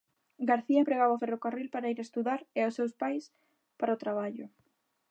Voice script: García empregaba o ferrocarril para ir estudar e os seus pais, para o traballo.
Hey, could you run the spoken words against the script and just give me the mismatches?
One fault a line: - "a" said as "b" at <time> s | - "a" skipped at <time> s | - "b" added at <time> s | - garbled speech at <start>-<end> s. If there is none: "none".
none